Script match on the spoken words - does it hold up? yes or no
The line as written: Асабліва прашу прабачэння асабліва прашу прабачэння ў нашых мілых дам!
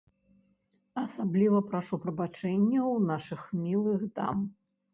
no